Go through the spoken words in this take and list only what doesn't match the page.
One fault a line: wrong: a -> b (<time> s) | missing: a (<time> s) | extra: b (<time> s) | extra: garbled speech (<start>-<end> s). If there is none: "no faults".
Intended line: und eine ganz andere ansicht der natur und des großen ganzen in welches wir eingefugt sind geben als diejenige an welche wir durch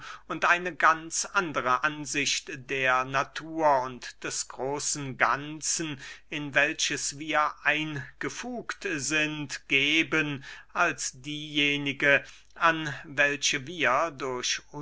no faults